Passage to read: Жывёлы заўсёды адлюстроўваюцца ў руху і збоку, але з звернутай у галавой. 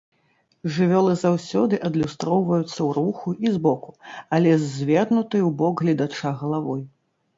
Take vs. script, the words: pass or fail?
fail